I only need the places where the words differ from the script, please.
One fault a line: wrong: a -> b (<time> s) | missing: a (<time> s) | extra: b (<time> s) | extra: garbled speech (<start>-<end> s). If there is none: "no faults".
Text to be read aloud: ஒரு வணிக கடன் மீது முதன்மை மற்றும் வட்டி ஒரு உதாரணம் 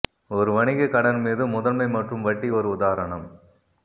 no faults